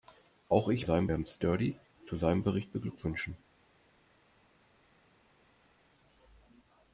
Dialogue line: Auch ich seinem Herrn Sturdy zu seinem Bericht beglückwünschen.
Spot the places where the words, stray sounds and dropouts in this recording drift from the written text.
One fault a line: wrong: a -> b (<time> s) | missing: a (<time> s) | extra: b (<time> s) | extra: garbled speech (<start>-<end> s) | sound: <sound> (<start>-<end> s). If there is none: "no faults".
no faults